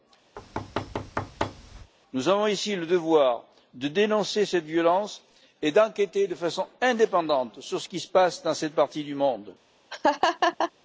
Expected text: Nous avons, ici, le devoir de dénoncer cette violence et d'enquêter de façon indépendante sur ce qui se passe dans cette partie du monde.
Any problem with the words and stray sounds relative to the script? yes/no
yes